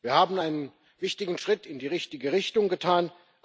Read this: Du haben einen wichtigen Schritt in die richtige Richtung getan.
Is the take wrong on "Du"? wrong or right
wrong